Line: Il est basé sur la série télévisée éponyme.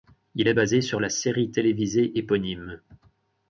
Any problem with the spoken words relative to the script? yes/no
no